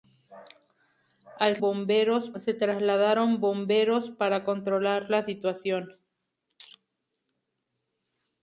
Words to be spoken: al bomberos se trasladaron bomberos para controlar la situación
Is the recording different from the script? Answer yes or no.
no